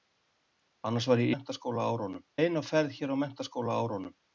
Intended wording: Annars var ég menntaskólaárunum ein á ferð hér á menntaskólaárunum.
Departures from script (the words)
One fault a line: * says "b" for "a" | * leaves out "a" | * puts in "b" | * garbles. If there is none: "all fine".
all fine